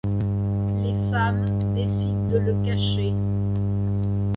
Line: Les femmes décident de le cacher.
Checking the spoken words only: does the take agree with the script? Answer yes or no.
yes